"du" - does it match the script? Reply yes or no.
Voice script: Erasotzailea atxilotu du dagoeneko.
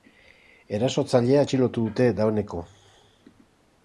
no